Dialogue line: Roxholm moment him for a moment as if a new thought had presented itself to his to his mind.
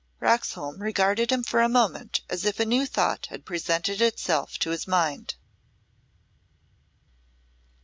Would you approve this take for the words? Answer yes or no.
no